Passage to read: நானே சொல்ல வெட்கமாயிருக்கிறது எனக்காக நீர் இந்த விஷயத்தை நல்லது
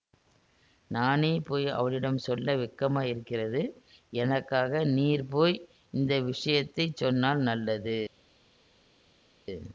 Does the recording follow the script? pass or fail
fail